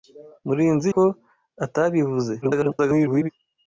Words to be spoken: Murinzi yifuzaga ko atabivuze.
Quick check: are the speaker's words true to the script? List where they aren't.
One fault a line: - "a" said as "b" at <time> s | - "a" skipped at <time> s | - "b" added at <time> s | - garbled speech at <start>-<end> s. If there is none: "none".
- "yifuzaga" skipped at 0.9 s
- garbled speech at 2.4-3.3 s